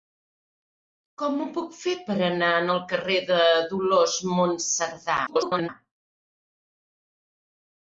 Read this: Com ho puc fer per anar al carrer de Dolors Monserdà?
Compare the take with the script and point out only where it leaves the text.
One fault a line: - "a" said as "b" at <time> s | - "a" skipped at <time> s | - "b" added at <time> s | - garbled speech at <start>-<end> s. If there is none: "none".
- garbled speech at 5.3-5.7 s